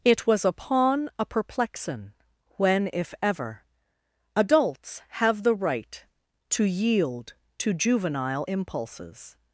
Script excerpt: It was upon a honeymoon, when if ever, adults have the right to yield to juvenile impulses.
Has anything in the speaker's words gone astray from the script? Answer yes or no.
yes